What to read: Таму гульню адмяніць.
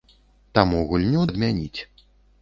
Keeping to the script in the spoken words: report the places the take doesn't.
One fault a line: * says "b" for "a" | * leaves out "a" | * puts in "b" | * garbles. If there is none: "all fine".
all fine